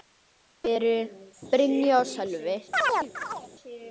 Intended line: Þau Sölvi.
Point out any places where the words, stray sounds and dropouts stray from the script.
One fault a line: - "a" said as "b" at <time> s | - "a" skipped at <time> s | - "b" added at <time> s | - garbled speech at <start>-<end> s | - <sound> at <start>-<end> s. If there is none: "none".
- "eru Brynja og" added at 0.7 s
- chirp at 2.7-3.5 s